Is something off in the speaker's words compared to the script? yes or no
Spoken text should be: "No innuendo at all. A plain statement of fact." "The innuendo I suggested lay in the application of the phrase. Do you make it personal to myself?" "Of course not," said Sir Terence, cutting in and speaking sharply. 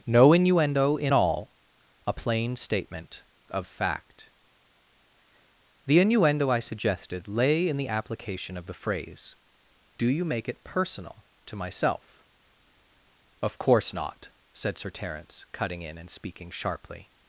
yes